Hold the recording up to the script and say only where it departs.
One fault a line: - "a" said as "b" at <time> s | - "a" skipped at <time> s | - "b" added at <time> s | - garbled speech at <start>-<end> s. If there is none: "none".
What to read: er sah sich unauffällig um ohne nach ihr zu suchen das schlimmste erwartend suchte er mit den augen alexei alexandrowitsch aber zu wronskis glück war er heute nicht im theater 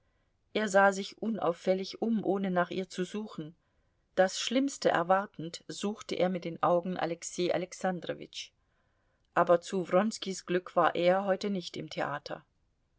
none